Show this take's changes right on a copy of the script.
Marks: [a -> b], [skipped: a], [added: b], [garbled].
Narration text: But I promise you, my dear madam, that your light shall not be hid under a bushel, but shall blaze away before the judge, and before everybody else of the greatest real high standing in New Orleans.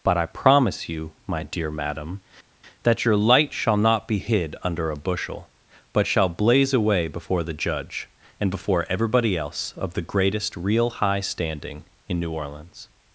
But I promise you, my dear madam, that your light shall not be hid under a bushel, but shall blaze away before the judge, and before everybody else of the greatest real high standing in New Orleans.